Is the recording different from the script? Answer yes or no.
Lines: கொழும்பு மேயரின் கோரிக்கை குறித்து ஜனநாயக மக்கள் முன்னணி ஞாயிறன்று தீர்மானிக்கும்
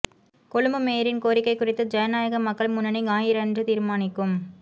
no